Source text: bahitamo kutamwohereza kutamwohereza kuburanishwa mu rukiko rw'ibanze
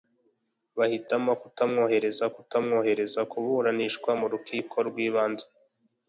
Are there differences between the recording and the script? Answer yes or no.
no